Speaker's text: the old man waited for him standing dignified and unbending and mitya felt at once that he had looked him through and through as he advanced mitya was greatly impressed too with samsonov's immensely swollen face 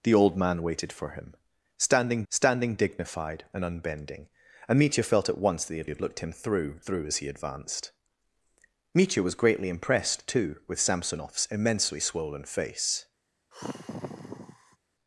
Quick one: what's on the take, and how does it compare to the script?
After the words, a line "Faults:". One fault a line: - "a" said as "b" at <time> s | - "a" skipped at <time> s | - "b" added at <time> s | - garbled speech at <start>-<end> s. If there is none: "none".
the old man waited for him standing standing dignified and unbending and mitya felt at once that he had had looked him through through as he advanced mitya was greatly impressed too with samsonov's immensely swollen face
Faults:
- "standing" added at 2.3 s
- "had" added at 5.9 s
- "and" skipped at 6.8 s